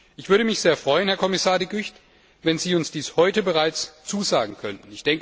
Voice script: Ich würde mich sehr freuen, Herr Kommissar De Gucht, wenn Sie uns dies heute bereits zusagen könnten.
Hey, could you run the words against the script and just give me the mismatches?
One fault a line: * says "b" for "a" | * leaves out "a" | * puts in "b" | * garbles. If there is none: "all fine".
all fine